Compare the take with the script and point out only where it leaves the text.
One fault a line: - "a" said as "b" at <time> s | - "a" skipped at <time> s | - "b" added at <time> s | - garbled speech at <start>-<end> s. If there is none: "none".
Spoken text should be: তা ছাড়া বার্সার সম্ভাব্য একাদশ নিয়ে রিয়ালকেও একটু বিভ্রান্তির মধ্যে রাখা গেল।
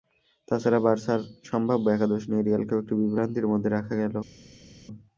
none